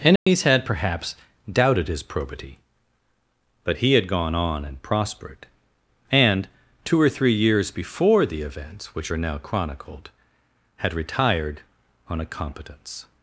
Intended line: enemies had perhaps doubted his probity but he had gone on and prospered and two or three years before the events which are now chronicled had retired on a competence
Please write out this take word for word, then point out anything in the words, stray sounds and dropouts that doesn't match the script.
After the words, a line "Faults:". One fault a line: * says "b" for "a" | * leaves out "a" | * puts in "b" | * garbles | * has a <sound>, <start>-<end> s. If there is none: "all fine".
enemies had perhaps doubted his probity but he had gone on and prospered and two or three years before the events which are now chronicled had retired on a competence
Faults:
* has a dropout, 0.2-0.3 s